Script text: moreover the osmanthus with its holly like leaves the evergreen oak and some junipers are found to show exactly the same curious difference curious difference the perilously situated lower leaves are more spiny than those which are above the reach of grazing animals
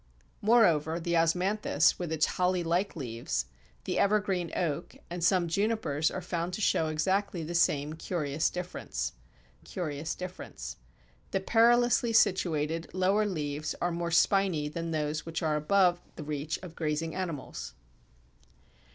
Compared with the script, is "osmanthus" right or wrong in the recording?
right